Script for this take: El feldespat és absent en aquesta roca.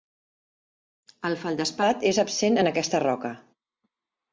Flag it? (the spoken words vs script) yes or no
no